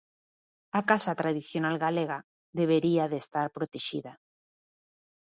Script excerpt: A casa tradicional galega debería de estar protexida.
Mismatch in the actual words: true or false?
false